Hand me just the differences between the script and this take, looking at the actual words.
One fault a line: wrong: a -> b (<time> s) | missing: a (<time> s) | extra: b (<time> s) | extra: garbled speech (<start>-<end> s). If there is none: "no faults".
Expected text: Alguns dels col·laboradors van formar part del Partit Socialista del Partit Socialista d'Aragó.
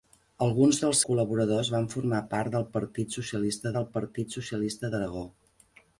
no faults